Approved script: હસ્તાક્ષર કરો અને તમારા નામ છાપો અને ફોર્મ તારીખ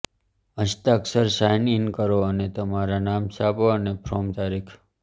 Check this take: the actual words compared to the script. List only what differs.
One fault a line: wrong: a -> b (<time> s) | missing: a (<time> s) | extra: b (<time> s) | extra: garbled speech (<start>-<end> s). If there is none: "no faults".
extra: સાઇન ઇન (1.4 s)